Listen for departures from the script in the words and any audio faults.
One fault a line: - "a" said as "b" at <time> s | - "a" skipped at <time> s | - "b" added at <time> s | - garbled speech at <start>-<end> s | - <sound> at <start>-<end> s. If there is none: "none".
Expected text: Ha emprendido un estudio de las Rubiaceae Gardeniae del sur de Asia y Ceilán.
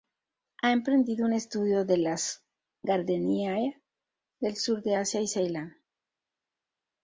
- "Rubiaceae" skipped at 2.4 s